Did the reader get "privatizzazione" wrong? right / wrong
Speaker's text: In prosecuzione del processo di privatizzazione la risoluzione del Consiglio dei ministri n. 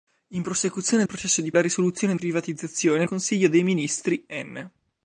wrong